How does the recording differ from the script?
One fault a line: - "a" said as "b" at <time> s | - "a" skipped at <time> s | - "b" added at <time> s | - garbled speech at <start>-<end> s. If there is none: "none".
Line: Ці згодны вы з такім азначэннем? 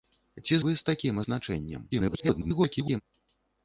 - "згодны" skipped at 0.6 s
- garbled speech at 1.9-3.0 s